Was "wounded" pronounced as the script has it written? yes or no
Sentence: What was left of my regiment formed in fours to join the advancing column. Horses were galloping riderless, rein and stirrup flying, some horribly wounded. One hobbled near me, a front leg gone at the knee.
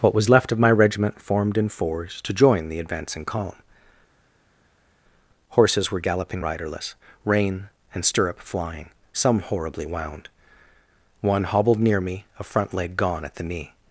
no